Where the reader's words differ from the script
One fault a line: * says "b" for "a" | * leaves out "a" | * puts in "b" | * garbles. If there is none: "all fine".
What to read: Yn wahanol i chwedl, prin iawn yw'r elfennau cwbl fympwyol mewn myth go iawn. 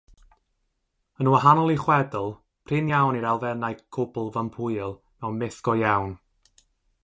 all fine